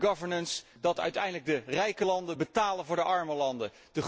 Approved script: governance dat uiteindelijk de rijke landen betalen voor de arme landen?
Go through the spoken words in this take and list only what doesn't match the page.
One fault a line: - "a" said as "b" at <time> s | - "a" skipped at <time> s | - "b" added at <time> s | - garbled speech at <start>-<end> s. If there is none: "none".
none